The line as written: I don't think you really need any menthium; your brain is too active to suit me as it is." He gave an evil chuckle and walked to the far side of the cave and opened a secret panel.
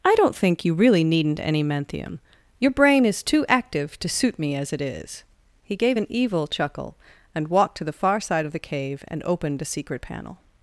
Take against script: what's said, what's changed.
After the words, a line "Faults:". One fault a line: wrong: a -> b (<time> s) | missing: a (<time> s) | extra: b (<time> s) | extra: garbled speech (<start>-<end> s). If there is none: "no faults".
I don't think you really needn't any menthium; your brain is too active to suit me as it is." He gave an evil chuckle and walked to the far side of the cave and opened a secret panel.
Faults:
wrong: need -> needn't (1.0 s)